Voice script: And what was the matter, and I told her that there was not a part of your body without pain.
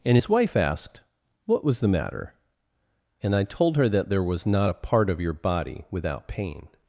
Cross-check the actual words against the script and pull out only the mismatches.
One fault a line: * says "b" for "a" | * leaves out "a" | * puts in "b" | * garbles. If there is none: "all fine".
* puts in "his wife asked"